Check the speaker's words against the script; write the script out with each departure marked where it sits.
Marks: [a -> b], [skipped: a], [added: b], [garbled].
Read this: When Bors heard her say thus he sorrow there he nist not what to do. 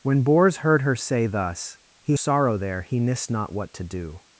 When Bors heard her say thus he sorrow there he nist not what to do.